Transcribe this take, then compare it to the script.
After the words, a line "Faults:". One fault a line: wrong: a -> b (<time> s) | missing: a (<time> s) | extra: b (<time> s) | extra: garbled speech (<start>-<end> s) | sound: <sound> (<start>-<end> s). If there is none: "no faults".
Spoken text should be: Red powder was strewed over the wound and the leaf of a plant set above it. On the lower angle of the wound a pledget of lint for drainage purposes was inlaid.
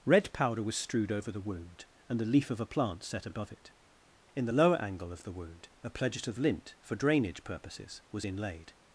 Red powder was strewed over the wound and the leaf of a plant set above it. In the lower angle of the wound a pledget of lint for drainage purposes was inlaid.
Faults:
wrong: On -> In (4.3 s)